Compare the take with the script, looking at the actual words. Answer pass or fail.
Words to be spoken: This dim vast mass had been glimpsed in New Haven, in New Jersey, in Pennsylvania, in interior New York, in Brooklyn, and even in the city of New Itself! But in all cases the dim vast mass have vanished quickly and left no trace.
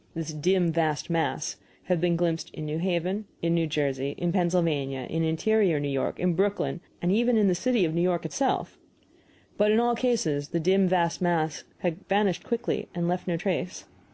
fail